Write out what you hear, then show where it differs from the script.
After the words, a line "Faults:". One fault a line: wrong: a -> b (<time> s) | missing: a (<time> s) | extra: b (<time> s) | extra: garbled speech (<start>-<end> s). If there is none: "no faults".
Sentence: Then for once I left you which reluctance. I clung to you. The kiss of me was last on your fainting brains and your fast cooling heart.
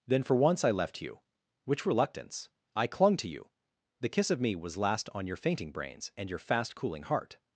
Then for once I left you which reluctance. I clung to you. The kiss of me was last on your fainting brains and your fast cooling heart.
Faults:
no faults